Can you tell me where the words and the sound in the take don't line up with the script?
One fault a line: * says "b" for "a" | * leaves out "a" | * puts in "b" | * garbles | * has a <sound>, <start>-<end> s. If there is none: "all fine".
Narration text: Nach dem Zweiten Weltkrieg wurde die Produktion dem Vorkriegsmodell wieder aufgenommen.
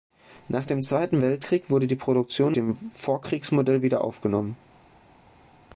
all fine